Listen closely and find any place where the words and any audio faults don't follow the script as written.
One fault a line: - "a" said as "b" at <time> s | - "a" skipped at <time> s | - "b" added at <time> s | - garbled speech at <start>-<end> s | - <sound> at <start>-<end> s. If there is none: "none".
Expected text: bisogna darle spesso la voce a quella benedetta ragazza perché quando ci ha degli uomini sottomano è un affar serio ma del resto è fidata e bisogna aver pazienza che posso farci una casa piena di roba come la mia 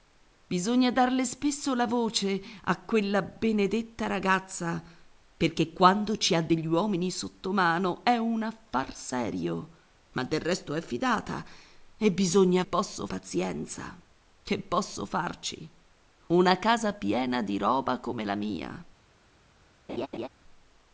- "aver" said as "posso" at 12.6 s
- laugh at 19.9-20.3 s